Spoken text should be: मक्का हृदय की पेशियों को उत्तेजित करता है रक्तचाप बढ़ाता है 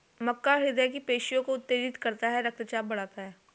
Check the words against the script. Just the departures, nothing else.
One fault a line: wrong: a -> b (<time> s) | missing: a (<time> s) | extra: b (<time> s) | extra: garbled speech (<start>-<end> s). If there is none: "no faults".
no faults